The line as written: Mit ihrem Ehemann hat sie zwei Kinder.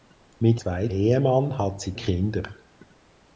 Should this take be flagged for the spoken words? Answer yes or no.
yes